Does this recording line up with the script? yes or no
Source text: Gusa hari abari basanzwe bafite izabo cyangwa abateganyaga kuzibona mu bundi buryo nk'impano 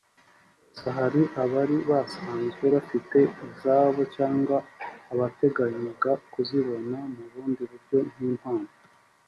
yes